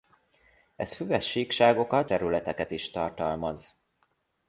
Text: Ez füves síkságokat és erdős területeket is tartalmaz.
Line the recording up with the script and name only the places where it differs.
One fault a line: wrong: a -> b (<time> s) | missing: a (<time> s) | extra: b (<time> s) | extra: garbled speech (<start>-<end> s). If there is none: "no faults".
missing: és erdős (2.1 s)